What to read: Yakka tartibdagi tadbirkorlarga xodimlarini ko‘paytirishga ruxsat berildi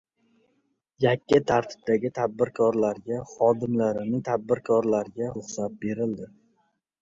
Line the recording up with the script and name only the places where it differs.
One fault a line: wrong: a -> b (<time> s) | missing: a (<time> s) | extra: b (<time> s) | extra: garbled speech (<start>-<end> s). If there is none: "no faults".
wrong: ko‘paytirishga -> tadbirkorlarga (4.2 s)